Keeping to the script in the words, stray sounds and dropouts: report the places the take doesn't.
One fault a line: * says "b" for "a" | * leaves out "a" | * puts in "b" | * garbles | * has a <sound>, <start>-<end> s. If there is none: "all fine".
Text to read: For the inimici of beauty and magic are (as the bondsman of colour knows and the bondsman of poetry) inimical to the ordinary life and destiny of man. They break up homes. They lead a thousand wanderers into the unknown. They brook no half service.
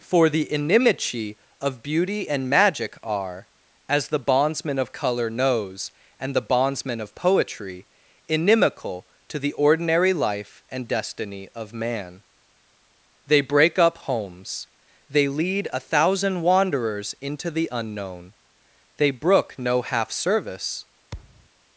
* has a thud, 21.1-21.5 s